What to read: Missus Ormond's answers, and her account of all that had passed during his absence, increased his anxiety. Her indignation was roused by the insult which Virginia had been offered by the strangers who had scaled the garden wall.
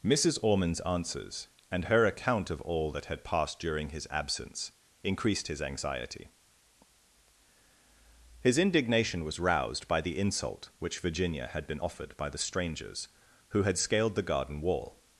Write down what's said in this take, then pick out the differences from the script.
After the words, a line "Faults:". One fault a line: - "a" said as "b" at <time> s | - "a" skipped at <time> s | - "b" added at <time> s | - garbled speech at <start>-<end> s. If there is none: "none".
Missus Ormond's answers, and her account of all that had passed during his absence, increased his anxiety. His indignation was roused by the insult which Virginia had been offered by the strangers who had scaled the garden wall.
Faults:
- "Her" said as "His" at 8.4 s